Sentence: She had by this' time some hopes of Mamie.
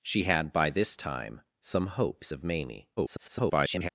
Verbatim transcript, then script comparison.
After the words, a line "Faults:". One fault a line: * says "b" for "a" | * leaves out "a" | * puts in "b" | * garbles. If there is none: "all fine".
She had by this' time some hopes of Mamie. [garbled]
Faults:
* garbles